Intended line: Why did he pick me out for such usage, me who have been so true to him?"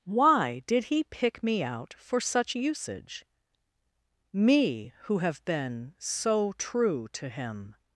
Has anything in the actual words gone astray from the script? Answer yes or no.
no